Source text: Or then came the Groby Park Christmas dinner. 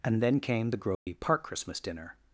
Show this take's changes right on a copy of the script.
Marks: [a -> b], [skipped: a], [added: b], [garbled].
[Or -> And] then came the Groby Park Christmas dinner.